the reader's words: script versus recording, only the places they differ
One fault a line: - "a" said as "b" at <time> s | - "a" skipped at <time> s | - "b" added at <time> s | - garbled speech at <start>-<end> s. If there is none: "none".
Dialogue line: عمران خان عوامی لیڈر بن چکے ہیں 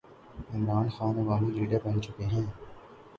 none